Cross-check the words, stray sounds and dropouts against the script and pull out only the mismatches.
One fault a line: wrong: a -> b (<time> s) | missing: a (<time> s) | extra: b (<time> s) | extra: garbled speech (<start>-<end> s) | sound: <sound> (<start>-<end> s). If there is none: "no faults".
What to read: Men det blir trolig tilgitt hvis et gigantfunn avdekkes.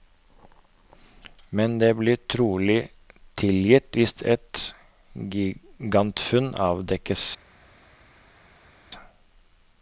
no faults